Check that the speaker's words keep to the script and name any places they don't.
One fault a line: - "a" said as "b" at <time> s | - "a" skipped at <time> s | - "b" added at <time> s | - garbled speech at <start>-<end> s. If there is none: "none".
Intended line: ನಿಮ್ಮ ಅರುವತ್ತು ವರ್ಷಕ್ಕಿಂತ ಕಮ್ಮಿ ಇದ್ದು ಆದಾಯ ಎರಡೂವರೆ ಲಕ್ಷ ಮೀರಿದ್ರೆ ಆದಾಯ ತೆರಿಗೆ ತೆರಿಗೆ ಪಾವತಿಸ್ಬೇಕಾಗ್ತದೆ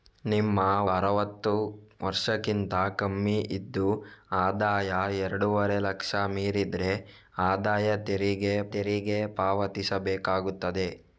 none